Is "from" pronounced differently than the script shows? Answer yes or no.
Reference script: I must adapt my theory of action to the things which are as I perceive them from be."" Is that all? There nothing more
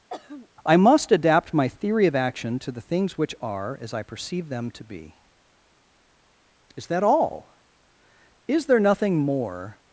yes